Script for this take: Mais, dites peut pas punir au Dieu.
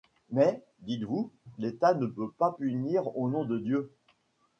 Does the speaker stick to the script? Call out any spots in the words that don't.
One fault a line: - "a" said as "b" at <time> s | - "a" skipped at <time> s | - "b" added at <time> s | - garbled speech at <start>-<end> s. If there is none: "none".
- "vous l'État ne" added at 1.0 s
- "nom de" added at 3.3 s